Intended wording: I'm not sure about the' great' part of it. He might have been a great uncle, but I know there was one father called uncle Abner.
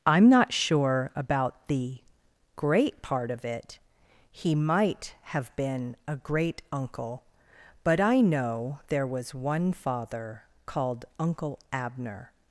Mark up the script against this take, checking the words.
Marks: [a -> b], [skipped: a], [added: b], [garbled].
I'm not sure about the' great' part of it. He might have been a great uncle, but I know there was one father called uncle Abner.